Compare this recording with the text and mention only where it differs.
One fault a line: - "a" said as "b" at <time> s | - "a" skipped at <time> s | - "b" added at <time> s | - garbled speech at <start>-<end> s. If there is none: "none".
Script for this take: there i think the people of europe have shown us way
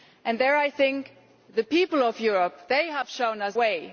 none